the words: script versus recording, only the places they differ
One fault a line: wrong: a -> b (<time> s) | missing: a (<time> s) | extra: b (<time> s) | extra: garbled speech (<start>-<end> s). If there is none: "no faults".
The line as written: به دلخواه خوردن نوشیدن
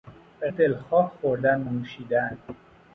no faults